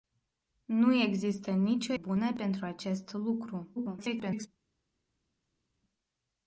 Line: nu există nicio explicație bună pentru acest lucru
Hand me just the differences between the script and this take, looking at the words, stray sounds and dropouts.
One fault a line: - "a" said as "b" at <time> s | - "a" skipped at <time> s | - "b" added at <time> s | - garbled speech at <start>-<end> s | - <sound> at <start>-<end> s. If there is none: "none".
- "explicație" skipped at 1.9 s
- garbled speech at 3.8-4.5 s